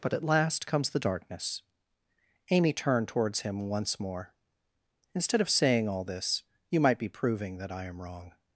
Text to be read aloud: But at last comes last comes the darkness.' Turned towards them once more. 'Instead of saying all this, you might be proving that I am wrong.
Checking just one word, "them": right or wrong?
wrong